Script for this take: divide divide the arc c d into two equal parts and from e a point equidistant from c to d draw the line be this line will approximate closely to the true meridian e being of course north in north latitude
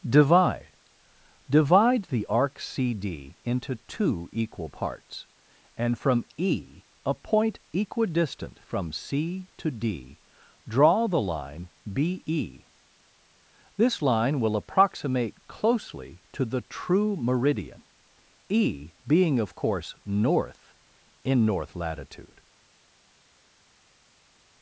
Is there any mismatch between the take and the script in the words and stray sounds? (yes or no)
no